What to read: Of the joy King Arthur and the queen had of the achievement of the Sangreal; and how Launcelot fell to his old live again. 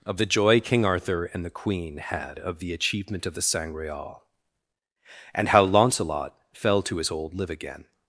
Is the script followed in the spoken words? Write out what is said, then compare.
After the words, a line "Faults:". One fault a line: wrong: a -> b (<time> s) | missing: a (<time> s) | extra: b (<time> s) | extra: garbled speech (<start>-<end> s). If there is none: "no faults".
Of the joy King Arthur and the queen had of the achievement of the Sangreal; and how Launcelot fell to his old live again.
Faults:
no faults